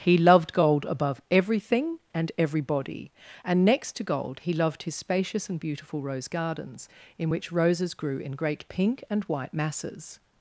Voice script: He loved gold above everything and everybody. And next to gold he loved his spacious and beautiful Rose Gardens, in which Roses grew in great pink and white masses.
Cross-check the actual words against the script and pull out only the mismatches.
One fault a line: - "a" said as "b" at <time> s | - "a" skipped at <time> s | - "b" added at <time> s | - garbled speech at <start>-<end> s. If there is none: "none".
none